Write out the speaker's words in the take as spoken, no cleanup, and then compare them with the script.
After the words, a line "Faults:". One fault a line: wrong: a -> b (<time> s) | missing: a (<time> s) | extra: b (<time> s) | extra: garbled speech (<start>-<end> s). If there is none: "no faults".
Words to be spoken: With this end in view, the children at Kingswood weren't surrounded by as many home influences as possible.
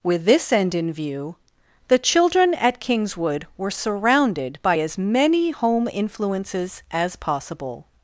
With this end in view, the children at Kingswood were surrounded by as many home influences as possible.
Faults:
wrong: weren't -> were (3.6 s)